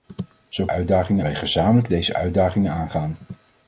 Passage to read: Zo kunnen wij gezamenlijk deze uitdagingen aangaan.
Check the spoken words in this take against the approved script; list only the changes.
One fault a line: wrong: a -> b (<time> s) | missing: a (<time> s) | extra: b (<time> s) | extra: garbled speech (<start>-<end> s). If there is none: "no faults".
wrong: kunnen -> uitdagingen (0.7 s)